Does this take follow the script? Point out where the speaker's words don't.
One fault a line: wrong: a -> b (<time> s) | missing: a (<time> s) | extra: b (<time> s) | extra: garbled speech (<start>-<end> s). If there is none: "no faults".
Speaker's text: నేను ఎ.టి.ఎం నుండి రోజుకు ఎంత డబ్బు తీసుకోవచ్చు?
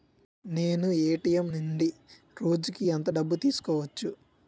no faults